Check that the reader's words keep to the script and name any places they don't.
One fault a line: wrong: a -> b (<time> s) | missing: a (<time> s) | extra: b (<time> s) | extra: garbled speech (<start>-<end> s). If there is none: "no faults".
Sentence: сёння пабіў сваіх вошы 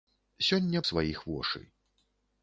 missing: пабіў (0.8 s)